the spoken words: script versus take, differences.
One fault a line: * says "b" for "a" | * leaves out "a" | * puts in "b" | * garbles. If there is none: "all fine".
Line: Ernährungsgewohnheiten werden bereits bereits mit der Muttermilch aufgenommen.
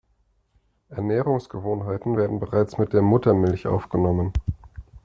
* leaves out "bereits"